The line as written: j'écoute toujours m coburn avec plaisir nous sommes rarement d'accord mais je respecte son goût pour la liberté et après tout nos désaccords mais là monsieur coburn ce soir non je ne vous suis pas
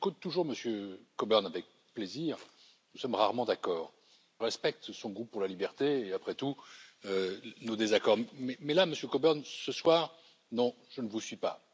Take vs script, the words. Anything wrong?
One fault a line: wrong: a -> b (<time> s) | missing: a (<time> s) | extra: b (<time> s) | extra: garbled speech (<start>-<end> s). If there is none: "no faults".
missing: mais je (3.9 s)